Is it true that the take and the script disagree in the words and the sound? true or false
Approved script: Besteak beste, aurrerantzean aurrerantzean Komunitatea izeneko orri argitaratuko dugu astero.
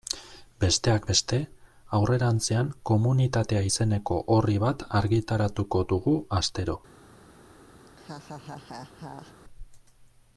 true